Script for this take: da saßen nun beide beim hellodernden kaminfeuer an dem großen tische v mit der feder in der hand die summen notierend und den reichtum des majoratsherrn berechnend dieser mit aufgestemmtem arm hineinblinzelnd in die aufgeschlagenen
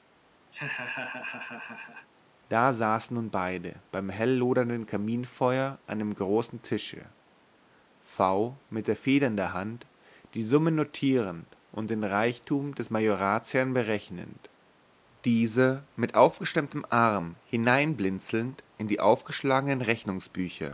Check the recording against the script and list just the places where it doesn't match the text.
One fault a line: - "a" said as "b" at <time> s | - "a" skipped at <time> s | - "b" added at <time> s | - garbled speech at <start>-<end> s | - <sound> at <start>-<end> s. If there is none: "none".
- laugh at 0.5-2.1 s